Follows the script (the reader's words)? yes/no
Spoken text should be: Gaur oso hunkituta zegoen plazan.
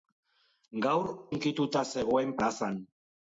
no